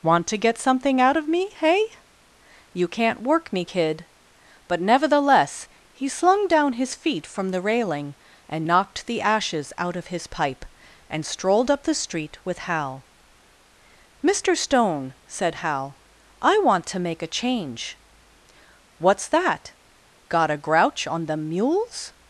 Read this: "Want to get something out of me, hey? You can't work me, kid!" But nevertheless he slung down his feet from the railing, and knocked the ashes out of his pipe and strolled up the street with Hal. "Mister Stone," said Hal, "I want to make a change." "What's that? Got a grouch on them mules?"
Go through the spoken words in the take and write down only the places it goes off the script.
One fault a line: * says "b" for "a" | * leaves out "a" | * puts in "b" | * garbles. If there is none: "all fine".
all fine